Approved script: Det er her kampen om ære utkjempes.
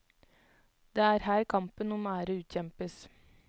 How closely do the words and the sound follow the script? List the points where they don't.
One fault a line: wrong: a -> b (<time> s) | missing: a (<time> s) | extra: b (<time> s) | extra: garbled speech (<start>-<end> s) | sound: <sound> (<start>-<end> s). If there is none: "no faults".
no faults